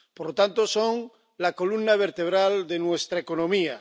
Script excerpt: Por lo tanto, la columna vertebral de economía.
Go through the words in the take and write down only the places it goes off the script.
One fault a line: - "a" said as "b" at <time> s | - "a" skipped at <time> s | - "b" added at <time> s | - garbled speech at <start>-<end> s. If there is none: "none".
- "son" added at 0.7 s
- "nuestra" added at 2.8 s